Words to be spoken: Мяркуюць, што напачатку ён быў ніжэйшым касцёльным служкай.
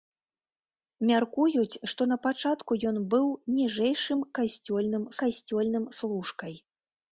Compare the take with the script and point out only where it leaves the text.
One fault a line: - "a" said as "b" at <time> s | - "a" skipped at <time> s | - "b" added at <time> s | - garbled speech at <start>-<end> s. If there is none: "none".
- "касцёльным" added at 5.2 s